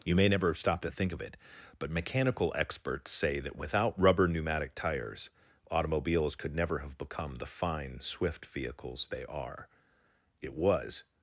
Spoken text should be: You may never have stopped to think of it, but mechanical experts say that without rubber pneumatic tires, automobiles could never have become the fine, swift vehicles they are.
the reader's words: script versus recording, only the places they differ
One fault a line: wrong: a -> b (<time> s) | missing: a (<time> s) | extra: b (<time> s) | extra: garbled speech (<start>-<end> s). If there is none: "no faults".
extra: It was (10.4 s)